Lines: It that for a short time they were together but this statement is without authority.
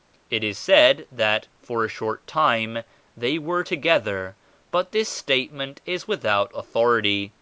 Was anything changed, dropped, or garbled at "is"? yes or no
no